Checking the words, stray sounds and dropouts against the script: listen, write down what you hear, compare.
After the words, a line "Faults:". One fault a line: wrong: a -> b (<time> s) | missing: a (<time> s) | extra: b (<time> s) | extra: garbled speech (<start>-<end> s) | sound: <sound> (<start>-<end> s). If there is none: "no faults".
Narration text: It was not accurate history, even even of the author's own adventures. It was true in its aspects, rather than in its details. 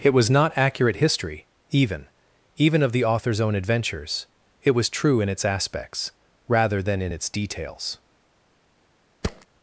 It was not accurate history, even even of the author's own adventures. It was true in its aspects, rather than in its details.
Faults:
sound: thud (9.2-9.5 s)